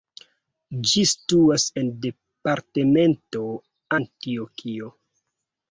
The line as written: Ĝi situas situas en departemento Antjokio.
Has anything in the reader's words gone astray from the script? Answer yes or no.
yes